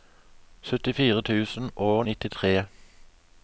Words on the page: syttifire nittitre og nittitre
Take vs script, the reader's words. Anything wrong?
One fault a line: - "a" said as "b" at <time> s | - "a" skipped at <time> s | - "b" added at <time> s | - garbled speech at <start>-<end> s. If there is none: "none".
- "nittitre" said as "tusen" at 1.2 s